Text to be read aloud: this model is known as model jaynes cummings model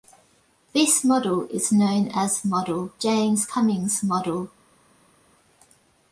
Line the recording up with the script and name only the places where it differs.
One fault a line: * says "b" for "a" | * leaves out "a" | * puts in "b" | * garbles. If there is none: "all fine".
all fine